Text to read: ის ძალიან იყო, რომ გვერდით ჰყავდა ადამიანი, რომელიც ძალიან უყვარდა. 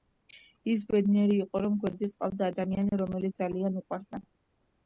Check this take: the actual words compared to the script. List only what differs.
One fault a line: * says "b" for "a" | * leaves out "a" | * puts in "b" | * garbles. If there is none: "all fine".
* says "ბედნიერი" for "ძალიან"